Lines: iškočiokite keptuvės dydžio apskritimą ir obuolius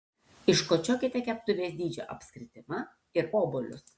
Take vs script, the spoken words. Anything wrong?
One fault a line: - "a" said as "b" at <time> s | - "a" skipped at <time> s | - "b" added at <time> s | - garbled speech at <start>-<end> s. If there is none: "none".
none